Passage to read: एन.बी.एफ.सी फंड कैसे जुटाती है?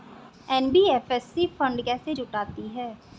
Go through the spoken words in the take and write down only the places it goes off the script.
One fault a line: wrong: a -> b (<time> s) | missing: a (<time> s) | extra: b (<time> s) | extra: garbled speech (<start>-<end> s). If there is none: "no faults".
no faults